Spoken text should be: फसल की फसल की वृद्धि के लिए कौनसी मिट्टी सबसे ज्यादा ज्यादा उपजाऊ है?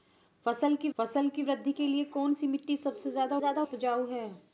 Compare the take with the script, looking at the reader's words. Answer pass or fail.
pass